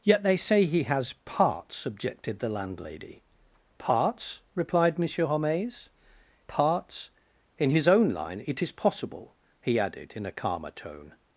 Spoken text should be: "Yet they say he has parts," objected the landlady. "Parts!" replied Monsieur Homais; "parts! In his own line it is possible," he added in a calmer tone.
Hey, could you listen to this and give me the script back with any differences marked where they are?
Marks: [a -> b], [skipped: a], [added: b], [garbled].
"Yet they say he has parts," objected the landlady. "Parts!" replied Monsieur Homais; "parts! In his own line it is possible," he added in a calmer tone.